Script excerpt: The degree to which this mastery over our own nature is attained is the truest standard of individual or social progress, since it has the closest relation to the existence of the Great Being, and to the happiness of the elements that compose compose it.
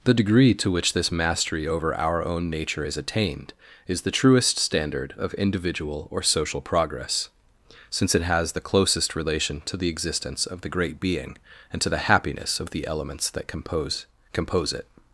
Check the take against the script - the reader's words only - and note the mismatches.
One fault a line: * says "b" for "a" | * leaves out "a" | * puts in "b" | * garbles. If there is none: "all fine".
all fine